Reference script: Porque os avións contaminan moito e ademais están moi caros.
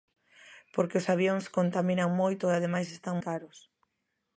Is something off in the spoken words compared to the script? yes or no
yes